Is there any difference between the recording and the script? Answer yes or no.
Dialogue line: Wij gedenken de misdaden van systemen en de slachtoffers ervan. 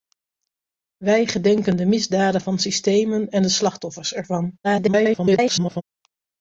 yes